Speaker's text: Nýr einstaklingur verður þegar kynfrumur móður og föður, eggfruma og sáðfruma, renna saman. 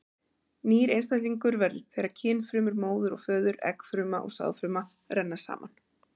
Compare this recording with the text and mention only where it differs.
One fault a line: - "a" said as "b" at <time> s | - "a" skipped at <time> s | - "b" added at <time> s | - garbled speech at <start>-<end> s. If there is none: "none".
none